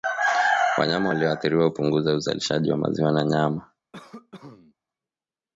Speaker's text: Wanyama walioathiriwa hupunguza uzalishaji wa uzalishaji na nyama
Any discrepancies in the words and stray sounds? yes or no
yes